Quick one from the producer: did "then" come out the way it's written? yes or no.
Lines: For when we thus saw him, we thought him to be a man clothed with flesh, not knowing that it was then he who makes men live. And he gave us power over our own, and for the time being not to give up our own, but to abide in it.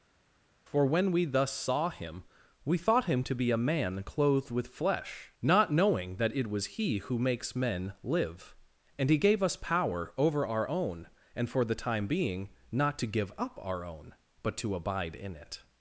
no